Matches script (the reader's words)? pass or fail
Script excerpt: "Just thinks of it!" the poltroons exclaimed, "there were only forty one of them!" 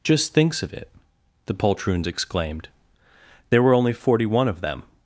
pass